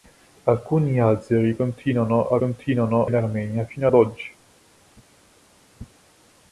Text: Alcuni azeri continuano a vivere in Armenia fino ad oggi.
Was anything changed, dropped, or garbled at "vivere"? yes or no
yes